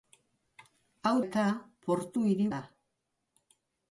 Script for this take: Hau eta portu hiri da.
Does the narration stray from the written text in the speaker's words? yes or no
no